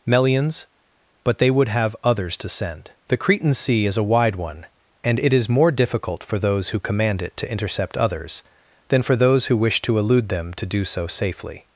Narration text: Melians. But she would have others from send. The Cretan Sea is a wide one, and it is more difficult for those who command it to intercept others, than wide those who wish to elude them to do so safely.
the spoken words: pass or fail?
fail